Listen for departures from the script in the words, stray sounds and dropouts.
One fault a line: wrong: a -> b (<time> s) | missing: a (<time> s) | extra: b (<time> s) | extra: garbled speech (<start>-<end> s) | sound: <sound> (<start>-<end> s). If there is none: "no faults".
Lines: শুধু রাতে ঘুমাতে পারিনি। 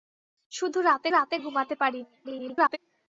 extra: রাতে (1.1 s)
extra: garbled speech (2.2-2.8 s)